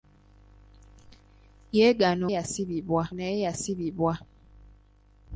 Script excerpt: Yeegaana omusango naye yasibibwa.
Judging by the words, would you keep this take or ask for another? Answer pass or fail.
fail